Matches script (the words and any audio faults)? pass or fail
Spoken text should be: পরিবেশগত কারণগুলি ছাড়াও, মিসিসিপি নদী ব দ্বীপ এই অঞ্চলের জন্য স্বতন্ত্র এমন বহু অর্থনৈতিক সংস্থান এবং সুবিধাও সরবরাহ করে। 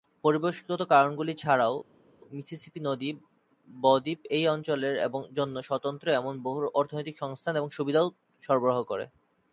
pass